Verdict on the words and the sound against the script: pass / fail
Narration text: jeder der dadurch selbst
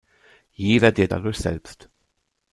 pass